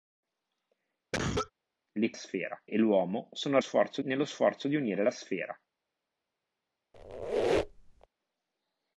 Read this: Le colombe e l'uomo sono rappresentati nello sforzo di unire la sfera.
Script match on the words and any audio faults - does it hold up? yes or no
no